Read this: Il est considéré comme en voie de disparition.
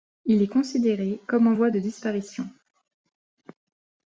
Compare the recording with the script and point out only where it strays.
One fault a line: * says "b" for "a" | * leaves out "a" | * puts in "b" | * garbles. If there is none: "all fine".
all fine